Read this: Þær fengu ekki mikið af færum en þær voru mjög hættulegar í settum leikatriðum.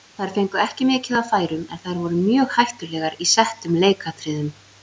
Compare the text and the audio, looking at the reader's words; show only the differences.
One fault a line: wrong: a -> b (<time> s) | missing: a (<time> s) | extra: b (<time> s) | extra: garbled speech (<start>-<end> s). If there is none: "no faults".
no faults